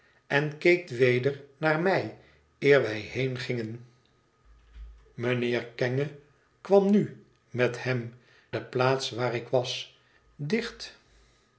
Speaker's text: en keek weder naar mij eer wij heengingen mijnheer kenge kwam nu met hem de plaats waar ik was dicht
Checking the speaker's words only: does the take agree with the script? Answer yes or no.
yes